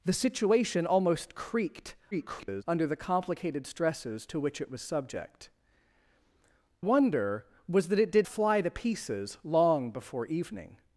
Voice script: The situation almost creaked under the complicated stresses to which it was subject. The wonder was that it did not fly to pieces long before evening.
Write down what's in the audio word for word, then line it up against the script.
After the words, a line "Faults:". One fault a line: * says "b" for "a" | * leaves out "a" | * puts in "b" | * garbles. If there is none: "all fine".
The situation almost creaked [garbled] under the complicated stresses to which it was subject. Wonder was that it did fly to pieces long before evening.
Faults:
* garbles
* leaves out "The"
* leaves out "not"